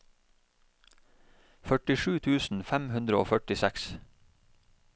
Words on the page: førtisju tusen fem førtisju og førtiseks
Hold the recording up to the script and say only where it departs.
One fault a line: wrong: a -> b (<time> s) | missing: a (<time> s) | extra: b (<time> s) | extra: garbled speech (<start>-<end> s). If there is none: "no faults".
wrong: førtisju -> hundre (2.9 s)